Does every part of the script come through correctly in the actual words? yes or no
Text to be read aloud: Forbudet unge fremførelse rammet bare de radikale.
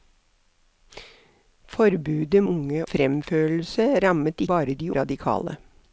yes